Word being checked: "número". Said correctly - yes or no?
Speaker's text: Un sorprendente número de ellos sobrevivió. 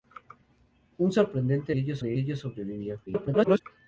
no